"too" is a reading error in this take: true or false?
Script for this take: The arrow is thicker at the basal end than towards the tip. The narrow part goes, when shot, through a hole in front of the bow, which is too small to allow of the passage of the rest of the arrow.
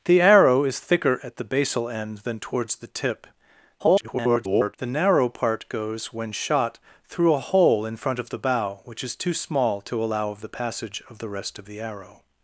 false